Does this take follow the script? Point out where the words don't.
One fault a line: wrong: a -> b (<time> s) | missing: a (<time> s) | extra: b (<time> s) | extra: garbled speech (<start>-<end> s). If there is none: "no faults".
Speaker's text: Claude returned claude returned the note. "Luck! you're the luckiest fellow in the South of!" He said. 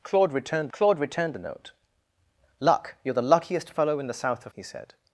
no faults